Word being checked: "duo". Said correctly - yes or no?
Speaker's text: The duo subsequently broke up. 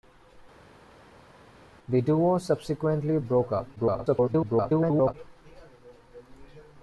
yes